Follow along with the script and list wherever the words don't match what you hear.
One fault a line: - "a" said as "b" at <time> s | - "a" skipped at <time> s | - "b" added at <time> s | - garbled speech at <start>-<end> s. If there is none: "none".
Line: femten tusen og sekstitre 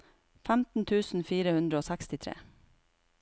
- "fire hundre" added at 1.3 s